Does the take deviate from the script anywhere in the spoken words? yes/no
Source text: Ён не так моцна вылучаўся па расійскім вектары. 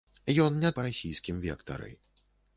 yes